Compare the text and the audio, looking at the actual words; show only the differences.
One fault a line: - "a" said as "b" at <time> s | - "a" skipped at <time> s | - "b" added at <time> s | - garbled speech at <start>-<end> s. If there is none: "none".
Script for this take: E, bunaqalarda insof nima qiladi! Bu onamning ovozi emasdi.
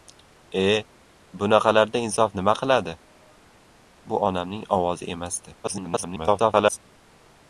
- garbled speech at 5.6-6.8 s